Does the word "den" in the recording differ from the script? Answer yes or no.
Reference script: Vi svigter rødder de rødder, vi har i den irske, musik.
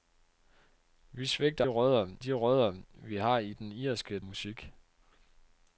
no